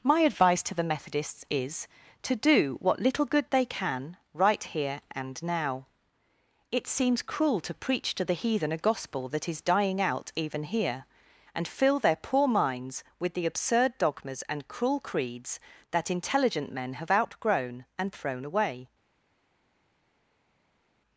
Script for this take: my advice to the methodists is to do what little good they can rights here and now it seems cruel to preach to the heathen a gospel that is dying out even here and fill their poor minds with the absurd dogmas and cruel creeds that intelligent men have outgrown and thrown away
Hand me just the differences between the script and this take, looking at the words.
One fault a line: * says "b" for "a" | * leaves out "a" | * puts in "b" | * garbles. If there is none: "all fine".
* says "right" for "rights"